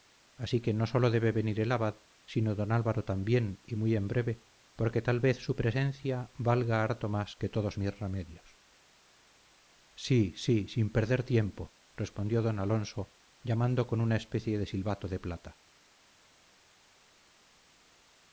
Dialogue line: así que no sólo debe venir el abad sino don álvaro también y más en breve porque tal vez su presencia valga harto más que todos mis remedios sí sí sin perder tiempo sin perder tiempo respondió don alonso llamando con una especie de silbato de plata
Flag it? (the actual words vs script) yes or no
yes